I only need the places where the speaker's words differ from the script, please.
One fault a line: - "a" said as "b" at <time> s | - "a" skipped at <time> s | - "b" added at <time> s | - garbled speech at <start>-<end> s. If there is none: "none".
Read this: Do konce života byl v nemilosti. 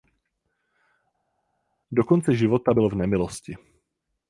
none